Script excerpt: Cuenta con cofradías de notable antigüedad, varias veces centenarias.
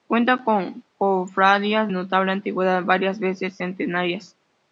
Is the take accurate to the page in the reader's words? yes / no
no